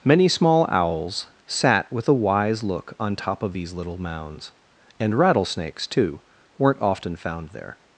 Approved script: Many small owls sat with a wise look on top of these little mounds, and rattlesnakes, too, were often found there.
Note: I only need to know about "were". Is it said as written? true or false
false